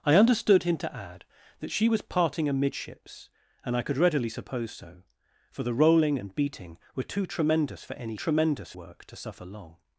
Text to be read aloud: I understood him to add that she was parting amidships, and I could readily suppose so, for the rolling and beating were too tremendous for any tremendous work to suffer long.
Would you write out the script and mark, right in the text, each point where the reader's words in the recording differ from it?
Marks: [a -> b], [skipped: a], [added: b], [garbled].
I understood him to add that she was parting amidships, and I could readily suppose so, for the rolling and beating were too tremendous for any tremendous work to suffer long.